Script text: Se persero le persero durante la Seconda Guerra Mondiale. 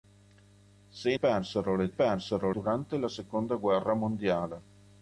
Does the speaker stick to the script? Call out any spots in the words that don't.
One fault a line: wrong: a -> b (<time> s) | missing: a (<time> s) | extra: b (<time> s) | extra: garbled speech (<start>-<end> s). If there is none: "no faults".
no faults